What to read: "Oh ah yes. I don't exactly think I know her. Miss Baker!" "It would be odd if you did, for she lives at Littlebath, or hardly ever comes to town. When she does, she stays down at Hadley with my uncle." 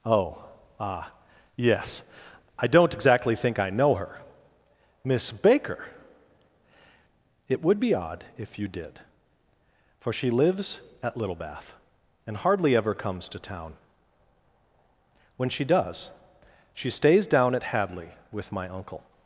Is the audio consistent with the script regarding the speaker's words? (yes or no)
no